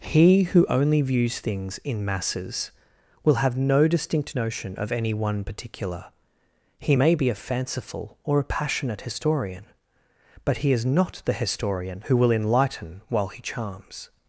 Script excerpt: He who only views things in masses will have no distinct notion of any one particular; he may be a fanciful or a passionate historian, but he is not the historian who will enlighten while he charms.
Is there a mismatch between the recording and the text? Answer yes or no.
no